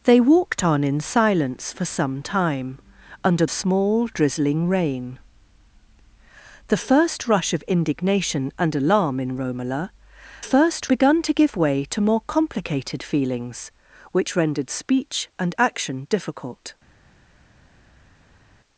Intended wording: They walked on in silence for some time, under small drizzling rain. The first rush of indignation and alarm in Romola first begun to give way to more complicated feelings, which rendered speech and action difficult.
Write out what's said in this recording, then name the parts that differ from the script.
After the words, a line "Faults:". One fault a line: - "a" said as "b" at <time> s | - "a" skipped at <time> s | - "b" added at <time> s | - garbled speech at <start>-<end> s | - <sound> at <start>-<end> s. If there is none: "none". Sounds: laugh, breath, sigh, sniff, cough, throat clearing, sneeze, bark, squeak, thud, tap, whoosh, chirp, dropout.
They walked on in silence for some time, under small drizzling rain. The first rush of indignation and alarm in Romola first begun to give way to more complicated feelings, which rendered speech and action difficult.
Faults:
none